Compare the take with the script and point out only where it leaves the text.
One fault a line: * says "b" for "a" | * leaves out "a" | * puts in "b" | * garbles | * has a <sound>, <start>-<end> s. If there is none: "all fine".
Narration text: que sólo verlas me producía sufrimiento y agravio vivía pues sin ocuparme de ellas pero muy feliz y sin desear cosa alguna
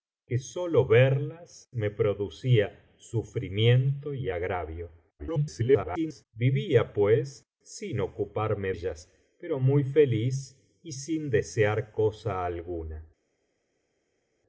* garbles
* leaves out "de"